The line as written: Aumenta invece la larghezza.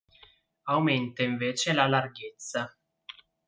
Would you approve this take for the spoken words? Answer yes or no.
yes